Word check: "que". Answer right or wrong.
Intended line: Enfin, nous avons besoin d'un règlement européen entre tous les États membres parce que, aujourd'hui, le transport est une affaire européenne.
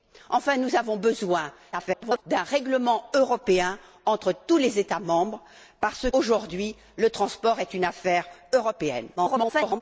wrong